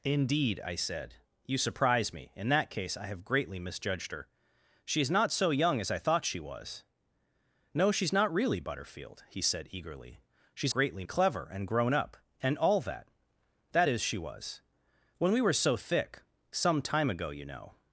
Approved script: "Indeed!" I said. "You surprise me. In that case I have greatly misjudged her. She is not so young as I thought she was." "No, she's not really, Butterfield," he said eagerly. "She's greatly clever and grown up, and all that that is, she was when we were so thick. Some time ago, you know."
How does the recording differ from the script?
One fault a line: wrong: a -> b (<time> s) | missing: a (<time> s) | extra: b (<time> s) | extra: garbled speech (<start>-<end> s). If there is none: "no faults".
no faults